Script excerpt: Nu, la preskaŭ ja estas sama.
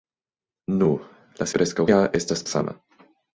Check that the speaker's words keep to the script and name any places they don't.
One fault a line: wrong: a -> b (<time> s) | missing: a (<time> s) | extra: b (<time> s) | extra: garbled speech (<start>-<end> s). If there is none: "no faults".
no faults